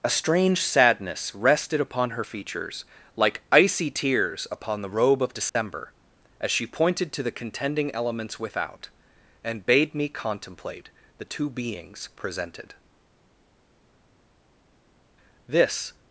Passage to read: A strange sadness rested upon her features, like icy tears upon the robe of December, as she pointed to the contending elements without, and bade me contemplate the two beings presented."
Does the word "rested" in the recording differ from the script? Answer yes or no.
no